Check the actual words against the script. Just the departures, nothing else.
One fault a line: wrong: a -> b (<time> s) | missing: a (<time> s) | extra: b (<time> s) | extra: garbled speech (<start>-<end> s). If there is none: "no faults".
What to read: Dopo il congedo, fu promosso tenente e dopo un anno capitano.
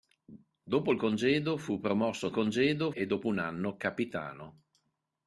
wrong: tenente -> congedo (2.3 s)